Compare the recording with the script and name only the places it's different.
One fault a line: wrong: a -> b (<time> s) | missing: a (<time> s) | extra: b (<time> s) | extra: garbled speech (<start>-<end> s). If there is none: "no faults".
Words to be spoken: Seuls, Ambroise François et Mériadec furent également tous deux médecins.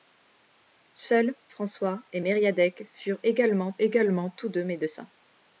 missing: Ambroise (1.4 s)
extra: également (3.8 s)